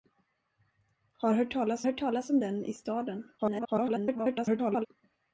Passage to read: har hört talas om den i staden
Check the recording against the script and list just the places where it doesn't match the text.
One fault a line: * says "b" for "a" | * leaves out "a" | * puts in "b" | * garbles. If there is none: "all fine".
* puts in "hört talas"
* garbles